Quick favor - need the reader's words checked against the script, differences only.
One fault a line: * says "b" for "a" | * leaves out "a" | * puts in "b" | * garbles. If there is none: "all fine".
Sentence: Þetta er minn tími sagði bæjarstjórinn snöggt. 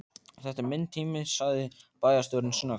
all fine